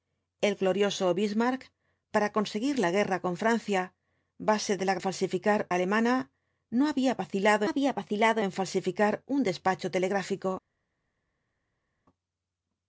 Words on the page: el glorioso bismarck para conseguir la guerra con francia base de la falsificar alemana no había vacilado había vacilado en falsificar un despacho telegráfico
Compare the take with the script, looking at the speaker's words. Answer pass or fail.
pass